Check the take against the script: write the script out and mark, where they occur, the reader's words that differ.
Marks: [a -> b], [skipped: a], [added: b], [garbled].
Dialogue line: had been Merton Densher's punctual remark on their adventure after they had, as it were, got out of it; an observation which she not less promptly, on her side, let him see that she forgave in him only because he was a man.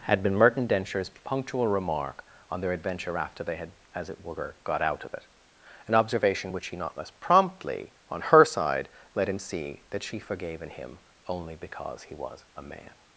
had been Merton Densher's punctual remark on their adventure after they had, as it were, got out of it; an observation which she not less promptly, on her side, let him see that she forgave in him only because he was a man.